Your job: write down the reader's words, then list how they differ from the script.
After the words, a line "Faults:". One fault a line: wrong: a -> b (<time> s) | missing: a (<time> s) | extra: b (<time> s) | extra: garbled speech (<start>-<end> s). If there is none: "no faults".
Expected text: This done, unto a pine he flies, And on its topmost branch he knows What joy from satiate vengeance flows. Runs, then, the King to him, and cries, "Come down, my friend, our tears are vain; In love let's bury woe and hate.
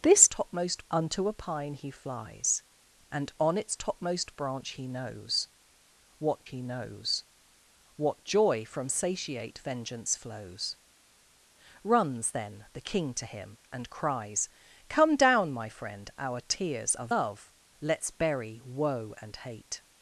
This topmost, unto a pine he flies, And on its topmost branch he knows What he knows What joy from satiate vengeance flows. Runs, then, the King to him, and cries, "Come down, my friend, our tears are love let's bury woe and hate.
Faults:
wrong: done -> topmost (0.3 s)
extra: he knows What (6.4 s)
missing: vain In (17.1 s)